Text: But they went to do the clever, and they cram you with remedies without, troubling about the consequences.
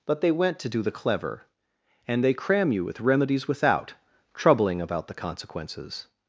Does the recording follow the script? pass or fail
pass